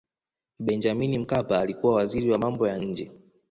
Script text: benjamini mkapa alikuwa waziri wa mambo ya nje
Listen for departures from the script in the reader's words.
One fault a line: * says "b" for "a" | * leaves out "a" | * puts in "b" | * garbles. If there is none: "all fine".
all fine